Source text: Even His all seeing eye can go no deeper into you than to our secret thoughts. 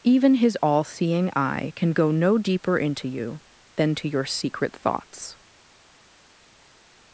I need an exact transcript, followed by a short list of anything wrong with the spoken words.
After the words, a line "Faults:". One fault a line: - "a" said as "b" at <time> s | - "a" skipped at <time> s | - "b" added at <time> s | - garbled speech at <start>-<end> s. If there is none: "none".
Even His all seeing eye can go no deeper into you than to your secret thoughts.
Faults:
- "our" said as "your" at 4.1 s